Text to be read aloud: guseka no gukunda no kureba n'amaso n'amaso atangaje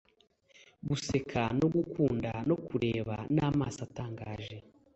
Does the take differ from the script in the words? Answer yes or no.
yes